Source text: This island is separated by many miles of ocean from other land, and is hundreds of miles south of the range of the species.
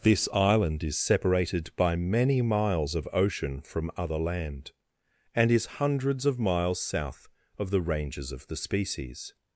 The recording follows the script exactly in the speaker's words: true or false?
false